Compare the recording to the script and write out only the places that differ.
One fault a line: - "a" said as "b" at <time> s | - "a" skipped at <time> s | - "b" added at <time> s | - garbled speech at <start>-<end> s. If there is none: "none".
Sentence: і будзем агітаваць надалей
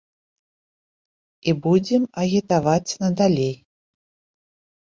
none